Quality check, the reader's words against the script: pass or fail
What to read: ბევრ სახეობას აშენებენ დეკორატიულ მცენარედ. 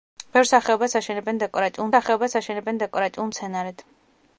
fail